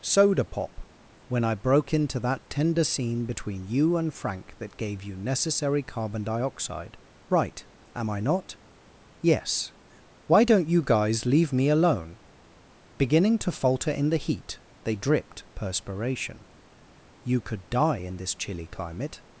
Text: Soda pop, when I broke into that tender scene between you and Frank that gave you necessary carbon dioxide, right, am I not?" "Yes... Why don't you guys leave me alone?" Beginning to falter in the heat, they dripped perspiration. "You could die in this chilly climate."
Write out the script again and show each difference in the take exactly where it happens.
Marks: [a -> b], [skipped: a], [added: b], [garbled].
Soda pop, when I broke into that tender scene between you and Frank that gave you necessary carbon dioxide, right, am I not?" "Yes... Why don't you guys leave me alone?" Beginning to falter in the heat, they dripped perspiration. "You could die in this chilly climate."